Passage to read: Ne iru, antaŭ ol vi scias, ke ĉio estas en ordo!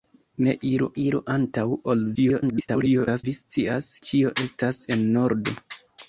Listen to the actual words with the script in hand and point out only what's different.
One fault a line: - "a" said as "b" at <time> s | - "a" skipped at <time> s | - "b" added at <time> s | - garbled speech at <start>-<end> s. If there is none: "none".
- "iru" added at 1.0 s
- garbled speech at 2.2-3.2 s
- "ke" skipped at 3.9 s